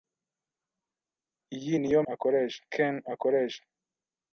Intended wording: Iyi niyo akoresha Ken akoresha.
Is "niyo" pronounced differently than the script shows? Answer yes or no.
no